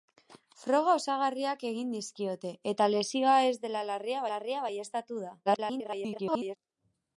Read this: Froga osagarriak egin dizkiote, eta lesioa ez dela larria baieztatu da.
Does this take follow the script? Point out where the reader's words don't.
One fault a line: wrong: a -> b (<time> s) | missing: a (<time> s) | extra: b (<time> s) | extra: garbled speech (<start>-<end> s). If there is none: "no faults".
extra: larria (4.3 s)
extra: garbled speech (5.5-6.6 s)